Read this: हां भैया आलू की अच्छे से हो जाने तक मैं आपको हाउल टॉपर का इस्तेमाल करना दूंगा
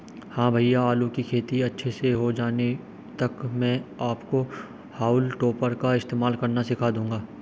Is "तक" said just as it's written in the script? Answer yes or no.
yes